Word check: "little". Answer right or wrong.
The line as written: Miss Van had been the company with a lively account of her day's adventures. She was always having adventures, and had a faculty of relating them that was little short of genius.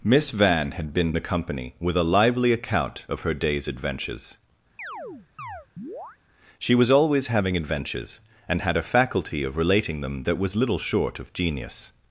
right